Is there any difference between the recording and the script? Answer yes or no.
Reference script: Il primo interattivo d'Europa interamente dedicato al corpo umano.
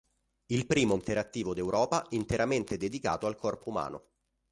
no